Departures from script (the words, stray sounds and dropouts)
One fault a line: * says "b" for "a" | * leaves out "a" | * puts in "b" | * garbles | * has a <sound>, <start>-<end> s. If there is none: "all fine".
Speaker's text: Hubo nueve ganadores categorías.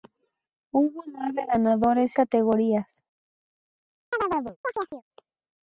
* has a chirp, 4.1-5.0 s